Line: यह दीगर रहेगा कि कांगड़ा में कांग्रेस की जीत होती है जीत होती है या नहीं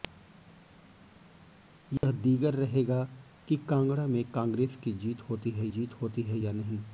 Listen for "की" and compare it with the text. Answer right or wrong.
right